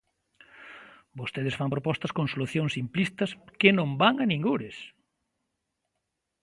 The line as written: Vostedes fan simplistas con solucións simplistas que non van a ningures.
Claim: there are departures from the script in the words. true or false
true